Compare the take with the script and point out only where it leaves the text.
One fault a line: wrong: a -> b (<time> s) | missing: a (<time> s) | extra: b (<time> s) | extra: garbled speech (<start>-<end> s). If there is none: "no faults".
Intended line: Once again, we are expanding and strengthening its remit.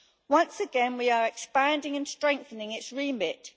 no faults